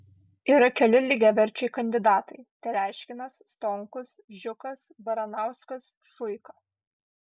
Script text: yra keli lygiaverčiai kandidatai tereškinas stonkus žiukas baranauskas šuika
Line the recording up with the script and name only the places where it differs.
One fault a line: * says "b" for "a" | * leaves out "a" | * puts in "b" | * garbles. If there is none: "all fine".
all fine